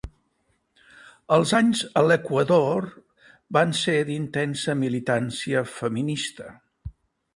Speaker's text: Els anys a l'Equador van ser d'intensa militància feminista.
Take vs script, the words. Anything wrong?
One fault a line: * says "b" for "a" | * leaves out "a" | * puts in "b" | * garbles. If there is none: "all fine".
all fine